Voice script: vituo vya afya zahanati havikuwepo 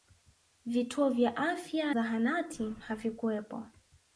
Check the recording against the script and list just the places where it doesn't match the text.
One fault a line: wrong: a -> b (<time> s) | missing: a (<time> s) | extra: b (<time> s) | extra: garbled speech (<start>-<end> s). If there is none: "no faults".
no faults